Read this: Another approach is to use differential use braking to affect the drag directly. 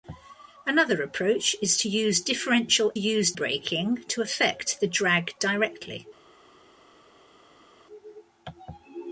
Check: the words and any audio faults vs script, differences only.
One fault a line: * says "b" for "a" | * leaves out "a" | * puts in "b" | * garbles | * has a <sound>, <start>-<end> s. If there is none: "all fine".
all fine